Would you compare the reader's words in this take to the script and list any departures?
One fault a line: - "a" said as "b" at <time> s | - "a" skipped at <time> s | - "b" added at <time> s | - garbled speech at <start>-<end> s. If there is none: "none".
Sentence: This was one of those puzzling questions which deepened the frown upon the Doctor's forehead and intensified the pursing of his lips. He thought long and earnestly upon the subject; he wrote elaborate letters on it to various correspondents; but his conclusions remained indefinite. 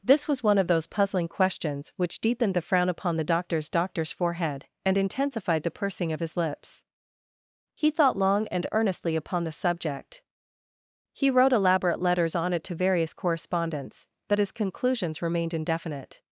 - "Doctor's" added at 3.7 s